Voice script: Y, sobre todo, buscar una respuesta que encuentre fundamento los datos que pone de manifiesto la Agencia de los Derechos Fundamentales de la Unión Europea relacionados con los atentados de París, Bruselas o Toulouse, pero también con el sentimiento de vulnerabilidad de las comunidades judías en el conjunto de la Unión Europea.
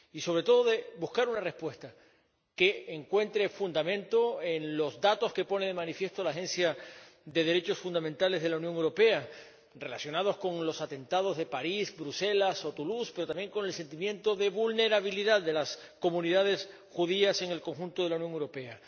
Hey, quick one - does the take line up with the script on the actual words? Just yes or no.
no